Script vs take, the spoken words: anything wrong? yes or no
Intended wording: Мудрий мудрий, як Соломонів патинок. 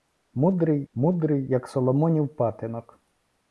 no